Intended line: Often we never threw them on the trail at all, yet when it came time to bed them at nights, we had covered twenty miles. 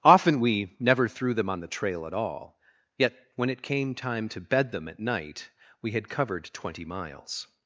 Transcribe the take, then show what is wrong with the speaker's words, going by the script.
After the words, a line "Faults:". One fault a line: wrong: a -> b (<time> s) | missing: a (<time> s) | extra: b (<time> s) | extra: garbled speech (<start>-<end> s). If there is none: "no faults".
Often we never threw them on the trail at all, yet when it came time to bed them at night, we had covered twenty miles.
Faults:
wrong: nights -> night (5.0 s)